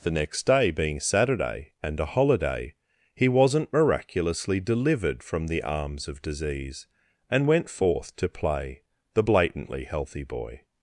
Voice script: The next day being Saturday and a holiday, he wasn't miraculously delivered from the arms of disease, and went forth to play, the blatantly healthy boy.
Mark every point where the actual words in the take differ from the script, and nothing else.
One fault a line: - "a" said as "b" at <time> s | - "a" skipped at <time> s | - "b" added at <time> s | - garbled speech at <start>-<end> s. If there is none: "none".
none